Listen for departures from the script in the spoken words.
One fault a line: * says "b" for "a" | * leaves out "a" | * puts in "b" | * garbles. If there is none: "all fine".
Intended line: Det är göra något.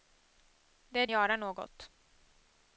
all fine